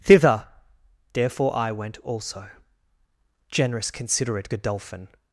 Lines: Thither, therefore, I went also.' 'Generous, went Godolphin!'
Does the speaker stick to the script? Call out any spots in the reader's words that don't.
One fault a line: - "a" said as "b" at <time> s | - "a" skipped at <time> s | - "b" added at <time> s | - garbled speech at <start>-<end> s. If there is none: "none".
- "went" said as "considerate" at 3.9 s